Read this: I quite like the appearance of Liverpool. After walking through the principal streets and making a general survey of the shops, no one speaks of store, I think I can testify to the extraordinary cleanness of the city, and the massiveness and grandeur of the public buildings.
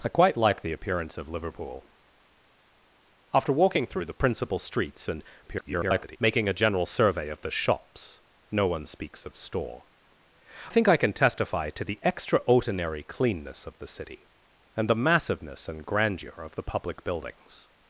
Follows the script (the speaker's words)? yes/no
no